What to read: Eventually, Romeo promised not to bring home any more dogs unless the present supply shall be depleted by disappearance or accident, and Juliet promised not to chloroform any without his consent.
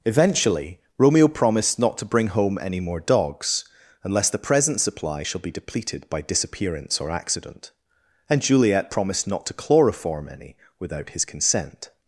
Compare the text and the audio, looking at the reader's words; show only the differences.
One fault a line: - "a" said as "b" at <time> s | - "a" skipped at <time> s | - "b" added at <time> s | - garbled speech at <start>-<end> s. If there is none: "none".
none